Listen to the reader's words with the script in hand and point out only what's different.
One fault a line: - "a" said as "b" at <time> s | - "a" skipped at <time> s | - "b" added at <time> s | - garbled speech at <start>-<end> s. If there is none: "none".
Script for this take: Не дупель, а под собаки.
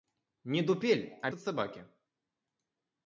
none